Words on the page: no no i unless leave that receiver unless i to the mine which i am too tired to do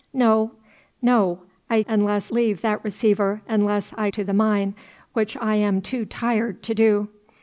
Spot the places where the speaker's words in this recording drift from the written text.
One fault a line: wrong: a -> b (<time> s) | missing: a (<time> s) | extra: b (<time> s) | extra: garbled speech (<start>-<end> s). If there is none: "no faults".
no faults